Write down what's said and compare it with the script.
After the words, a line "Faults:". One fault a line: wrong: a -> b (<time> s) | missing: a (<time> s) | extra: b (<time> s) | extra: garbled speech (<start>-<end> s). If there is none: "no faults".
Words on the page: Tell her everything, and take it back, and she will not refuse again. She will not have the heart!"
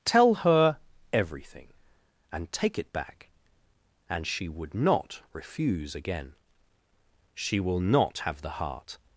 Tell her everything, and take it back, and she would not refuse again. She will not have the heart!"
Faults:
wrong: will -> would (4.5 s)